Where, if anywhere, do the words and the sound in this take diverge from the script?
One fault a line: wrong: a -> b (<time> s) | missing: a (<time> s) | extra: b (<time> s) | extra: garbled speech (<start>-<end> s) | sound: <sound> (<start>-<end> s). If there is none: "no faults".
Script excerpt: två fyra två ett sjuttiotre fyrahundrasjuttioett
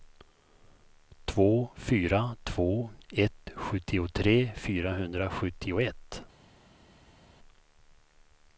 no faults